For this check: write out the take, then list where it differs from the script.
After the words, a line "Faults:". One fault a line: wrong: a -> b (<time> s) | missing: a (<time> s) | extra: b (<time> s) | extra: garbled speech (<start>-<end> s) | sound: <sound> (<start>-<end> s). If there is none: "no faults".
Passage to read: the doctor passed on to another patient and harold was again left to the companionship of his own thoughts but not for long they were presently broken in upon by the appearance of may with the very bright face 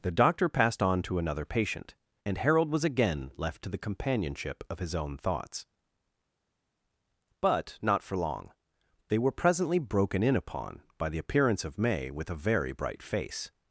the doctor passed on to another patient and harold was again left to the companionship of his own thoughts but not for long they were presently broken in upon by the appearance of may with a very bright face
Faults:
wrong: the -> a (12.3 s)